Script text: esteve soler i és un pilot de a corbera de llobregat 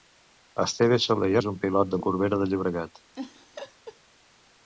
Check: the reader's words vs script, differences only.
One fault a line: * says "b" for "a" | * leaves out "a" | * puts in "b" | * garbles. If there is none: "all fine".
all fine